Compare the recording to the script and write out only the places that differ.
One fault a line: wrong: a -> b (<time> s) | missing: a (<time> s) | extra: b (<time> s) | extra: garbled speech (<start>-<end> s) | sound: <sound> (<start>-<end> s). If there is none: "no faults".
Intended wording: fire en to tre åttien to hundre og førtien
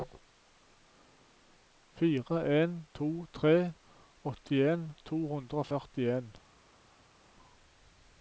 no faults